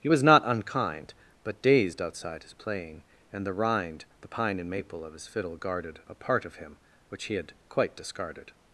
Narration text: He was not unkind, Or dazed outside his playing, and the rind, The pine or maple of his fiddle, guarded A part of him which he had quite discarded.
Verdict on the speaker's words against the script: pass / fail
fail